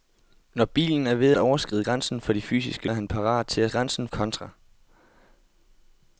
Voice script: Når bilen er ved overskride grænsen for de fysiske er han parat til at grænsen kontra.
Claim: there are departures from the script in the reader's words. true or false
false